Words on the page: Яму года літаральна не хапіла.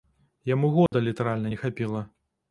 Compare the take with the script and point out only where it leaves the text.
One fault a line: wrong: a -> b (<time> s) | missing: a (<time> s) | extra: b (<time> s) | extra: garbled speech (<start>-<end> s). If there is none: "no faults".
no faults